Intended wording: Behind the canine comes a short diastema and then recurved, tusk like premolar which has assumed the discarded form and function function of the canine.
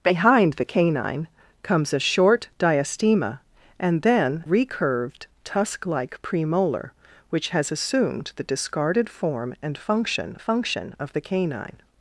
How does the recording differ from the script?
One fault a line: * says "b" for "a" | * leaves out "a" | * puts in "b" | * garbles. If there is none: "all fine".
all fine